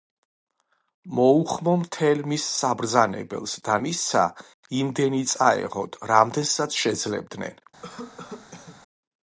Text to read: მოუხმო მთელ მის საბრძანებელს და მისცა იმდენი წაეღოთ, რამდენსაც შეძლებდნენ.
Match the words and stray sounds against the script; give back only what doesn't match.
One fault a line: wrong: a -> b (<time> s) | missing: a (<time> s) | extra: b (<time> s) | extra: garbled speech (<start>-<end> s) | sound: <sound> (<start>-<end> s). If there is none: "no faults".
sound: cough (7.8-8.8 s)